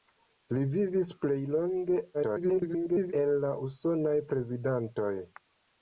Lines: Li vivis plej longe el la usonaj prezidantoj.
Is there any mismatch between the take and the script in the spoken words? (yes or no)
yes